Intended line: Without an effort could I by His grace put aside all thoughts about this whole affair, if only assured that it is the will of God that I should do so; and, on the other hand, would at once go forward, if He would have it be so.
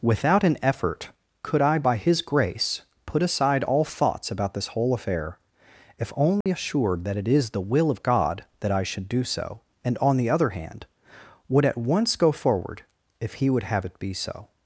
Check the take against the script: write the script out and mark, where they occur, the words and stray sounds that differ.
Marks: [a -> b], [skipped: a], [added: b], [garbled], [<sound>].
Without an effort could I by His grace put aside all thoughts about this whole affair, if only [dropout] assured that it is the will of God that I should do so; and, on the other hand, would at once go forward, if He would have it be so.